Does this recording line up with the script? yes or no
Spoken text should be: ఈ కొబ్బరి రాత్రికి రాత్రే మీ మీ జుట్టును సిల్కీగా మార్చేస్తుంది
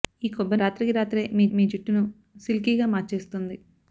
yes